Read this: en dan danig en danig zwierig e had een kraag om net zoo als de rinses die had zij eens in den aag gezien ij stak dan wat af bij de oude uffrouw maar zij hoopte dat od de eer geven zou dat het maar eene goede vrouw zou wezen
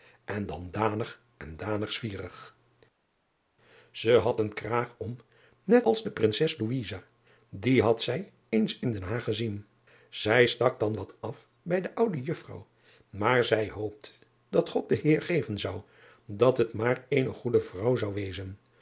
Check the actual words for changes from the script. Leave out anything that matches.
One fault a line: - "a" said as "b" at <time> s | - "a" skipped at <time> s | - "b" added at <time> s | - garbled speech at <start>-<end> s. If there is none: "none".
- "zoo" skipped at 5.9 s